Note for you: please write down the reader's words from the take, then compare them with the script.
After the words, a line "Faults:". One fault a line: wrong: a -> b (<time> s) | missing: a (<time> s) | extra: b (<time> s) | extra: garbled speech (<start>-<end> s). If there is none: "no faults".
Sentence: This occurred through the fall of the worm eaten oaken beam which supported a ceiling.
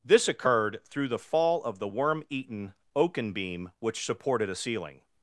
This occurred through the fall of the worm eaten oaken beam which supported a ceiling.
Faults:
no faults